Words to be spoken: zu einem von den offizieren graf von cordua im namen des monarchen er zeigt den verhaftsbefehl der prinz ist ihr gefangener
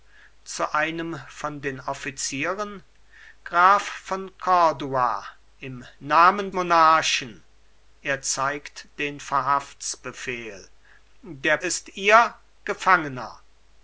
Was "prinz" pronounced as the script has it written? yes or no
no